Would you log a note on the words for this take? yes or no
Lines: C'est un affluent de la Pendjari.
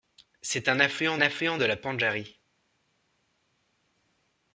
yes